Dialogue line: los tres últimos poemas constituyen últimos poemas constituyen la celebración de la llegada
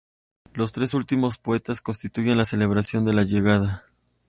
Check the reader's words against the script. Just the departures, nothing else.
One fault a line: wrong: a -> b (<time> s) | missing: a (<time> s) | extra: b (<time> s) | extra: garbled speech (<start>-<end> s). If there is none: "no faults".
missing: últimos poemas constituyen (2.4 s)